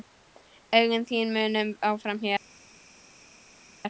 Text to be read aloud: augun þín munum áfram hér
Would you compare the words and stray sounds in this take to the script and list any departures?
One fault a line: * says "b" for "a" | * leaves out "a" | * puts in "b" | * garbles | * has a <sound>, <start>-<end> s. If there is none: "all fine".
all fine